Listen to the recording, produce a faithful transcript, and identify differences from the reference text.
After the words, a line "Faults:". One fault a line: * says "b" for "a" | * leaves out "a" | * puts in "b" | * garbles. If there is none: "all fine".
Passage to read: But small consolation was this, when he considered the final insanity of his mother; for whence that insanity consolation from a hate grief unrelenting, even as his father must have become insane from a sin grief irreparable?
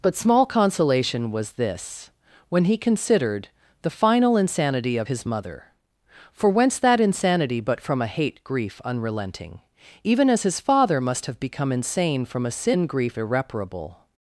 But small consolation was this, when he considered the final insanity of his mother; for whence that insanity but from a hate grief unrelenting, even as his father must have become insane from a sin grief irreparable?
Faults:
* says "but" for "consolation"